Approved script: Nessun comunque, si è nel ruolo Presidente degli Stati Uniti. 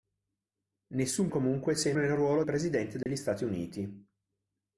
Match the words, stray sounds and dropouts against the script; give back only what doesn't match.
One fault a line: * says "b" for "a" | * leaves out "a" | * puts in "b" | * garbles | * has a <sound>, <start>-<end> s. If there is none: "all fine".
* has a dropout, 3.0-3.1 s